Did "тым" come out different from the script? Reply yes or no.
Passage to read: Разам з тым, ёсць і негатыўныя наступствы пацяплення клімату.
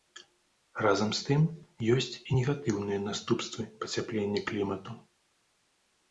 no